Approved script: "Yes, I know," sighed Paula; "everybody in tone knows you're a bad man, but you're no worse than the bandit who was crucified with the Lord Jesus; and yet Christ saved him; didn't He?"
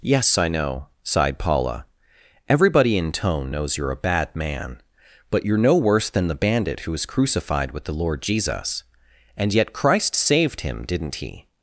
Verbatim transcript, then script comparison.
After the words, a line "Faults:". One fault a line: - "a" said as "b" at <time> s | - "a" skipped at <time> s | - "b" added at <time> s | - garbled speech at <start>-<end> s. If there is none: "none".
"Yes, I know," sighed Paula; "everybody in tone knows you're a bad man, but you're no worse than the bandit who was crucified with the Lord Jesus; and yet Christ saved him; didn't He?"
Faults:
none